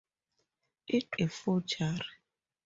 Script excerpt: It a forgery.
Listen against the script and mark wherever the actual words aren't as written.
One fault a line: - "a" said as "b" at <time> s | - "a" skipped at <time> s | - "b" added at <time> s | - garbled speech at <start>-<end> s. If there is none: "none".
none